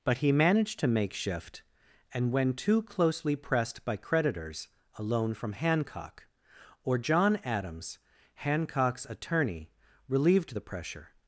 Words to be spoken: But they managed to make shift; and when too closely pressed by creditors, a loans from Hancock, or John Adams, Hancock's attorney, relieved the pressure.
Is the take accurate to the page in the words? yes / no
no